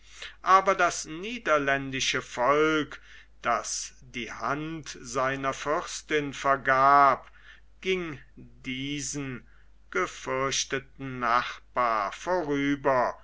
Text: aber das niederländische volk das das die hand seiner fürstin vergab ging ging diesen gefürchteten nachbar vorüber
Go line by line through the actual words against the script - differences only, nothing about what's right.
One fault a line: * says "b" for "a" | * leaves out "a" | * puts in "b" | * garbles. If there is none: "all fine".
* leaves out "das"
* leaves out "ging"